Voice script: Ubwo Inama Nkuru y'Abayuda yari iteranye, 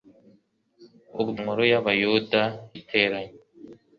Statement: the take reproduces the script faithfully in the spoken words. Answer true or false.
false